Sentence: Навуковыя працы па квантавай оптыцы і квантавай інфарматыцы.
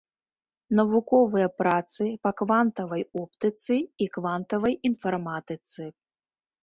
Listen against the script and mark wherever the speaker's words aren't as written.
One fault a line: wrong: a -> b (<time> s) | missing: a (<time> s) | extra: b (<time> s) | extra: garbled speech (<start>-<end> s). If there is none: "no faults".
no faults